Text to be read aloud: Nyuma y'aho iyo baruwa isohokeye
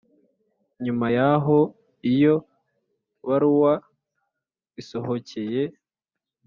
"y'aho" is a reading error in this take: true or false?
false